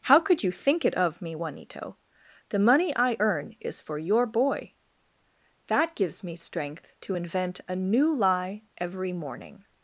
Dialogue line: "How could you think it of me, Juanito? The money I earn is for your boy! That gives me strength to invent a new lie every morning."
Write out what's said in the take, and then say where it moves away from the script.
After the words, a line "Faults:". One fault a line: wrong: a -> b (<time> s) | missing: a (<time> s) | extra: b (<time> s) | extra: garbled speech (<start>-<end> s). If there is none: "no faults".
"How could you think it of me, Juanito? The money I earn is for your boy! That gives me strength to invent a new lie every morning."
Faults:
no faults